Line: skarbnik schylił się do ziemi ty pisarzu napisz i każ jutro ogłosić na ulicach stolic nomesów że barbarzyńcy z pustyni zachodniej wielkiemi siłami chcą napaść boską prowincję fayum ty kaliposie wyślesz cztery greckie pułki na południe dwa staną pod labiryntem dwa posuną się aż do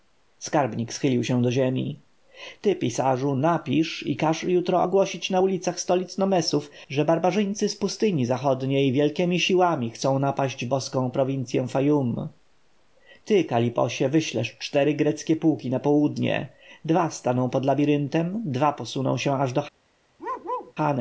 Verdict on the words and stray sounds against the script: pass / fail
fail